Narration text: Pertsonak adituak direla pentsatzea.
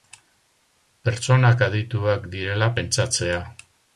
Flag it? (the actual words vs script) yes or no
no